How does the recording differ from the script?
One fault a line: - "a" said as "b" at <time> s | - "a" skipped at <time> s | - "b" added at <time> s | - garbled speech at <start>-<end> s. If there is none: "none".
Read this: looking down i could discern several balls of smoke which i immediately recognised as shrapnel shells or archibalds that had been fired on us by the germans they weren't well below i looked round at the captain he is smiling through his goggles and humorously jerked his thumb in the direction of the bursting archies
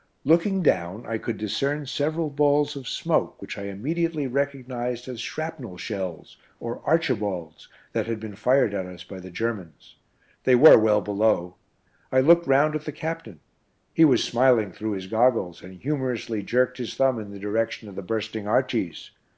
- "on" said as "at" at 8.7 s
- "weren't" said as "were" at 10.5 s
- "is" said as "was" at 14.0 s